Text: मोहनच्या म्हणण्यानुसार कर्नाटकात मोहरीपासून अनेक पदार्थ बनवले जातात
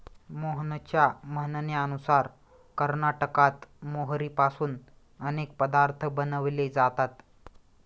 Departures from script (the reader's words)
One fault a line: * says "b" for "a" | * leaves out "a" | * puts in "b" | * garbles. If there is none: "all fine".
all fine